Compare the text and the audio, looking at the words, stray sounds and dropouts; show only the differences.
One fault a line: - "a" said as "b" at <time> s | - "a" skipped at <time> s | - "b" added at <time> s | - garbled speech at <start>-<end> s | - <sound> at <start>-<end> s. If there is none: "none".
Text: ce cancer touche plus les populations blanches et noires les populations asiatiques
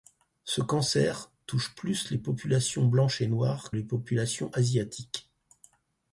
none